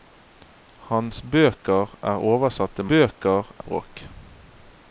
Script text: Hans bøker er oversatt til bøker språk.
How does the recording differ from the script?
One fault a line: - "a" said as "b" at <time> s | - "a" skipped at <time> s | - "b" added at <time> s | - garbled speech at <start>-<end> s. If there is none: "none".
none